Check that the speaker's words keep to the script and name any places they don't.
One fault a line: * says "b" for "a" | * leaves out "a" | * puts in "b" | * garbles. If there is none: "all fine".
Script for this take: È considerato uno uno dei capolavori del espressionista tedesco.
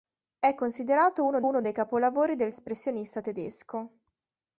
all fine